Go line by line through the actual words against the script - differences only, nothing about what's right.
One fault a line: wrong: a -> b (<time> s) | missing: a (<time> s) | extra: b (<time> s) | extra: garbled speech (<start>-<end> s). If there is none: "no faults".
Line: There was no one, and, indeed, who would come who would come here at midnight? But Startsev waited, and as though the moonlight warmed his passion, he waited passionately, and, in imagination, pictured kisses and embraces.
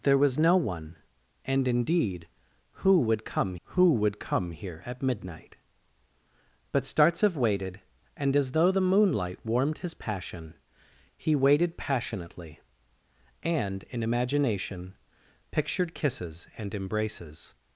no faults